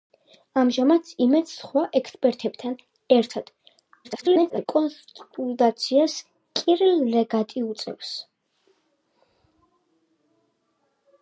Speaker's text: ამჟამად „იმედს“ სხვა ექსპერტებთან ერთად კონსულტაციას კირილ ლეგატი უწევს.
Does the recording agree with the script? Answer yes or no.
no